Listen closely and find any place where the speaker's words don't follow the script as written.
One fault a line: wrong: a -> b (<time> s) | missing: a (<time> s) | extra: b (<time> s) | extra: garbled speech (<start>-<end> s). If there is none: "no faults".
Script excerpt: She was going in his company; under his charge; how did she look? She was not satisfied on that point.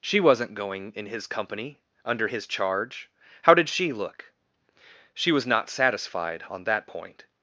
wrong: was -> wasn't (0.2 s)